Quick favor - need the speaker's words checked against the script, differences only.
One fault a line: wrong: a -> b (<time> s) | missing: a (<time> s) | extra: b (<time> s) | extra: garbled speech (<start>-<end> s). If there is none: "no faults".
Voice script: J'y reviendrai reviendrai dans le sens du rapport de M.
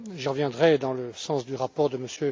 missing: reviendrai (0.8 s)